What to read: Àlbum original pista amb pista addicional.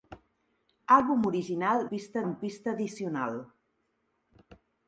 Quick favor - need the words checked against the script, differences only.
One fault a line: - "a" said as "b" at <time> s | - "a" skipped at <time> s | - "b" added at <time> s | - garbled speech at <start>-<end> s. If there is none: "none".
none